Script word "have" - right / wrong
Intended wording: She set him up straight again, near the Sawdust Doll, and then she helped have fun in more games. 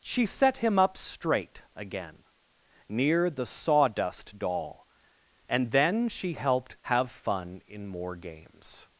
right